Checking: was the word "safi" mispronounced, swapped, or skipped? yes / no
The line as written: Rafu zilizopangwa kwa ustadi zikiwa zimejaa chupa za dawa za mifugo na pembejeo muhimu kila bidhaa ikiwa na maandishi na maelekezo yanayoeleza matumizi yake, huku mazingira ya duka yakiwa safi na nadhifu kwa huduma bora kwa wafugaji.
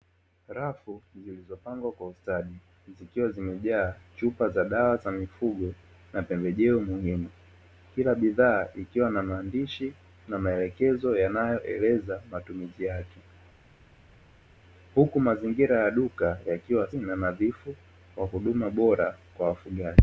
yes